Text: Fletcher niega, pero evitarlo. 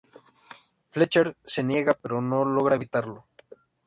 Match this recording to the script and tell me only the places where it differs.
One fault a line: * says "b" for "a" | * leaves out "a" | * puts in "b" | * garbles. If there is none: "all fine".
* puts in "se"
* puts in "no logra"